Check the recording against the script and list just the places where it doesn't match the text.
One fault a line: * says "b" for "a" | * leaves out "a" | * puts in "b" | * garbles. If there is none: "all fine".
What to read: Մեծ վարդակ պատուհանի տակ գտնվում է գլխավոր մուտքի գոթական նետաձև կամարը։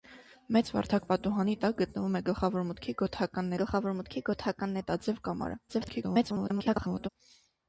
* puts in "գլխավոր մուտքի գոթական"
* garbles